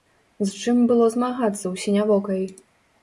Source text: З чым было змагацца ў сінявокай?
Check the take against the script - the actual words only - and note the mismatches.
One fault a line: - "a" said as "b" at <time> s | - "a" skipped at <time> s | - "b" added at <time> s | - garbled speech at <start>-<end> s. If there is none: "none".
none